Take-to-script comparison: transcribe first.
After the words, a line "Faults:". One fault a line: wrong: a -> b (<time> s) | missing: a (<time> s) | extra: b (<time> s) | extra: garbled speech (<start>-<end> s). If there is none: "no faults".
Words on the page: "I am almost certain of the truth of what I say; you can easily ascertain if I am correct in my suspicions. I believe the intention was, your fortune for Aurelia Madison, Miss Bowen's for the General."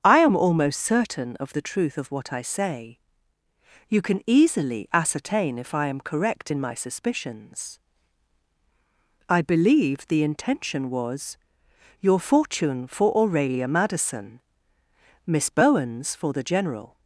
"I am almost certain of the truth of what I say; you can easily ascertain if I am correct in my suspicions. I believe the intention was, your fortune for Aurelia Madison, Miss Bowen's for the General."
Faults:
no faults